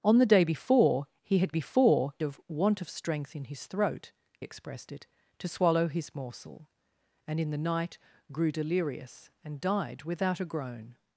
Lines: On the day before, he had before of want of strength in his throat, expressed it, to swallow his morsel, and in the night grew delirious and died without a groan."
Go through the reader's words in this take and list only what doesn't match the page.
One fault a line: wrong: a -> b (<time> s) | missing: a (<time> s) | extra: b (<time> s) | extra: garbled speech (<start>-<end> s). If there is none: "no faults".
no faults